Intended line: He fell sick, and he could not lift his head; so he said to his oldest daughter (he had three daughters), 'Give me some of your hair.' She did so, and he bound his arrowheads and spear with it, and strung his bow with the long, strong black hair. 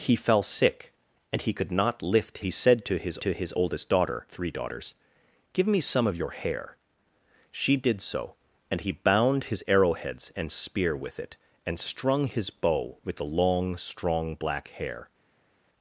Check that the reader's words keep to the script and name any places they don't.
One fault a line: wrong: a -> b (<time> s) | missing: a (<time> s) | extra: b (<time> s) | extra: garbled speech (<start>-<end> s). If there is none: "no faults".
missing: his head so (2.4 s)
extra: to his (3.2 s)
missing: he had (4.3 s)